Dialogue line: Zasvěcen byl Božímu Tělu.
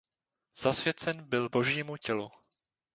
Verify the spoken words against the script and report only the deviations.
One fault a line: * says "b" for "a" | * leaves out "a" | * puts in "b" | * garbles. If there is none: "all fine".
all fine